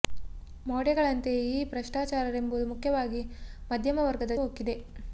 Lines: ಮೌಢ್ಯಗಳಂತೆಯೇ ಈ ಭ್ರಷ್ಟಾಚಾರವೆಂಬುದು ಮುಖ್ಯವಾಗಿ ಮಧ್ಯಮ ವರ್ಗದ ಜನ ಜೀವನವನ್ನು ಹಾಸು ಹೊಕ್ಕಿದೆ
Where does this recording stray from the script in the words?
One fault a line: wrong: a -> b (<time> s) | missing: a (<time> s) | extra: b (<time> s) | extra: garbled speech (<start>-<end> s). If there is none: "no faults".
missing: ಜನ ಜೀವನವನ್ನು ಹಾಸು (4.4 s)